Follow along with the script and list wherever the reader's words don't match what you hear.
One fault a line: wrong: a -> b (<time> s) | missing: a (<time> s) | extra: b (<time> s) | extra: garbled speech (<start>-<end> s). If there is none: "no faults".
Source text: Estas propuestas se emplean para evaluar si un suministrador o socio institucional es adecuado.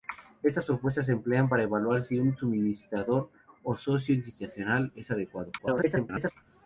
extra: garbled speech (5.6-6.3 s)